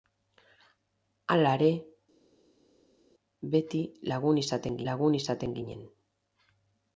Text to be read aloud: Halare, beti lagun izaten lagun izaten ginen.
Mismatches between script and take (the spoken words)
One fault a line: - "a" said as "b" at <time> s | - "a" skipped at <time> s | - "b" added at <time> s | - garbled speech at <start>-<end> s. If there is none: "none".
none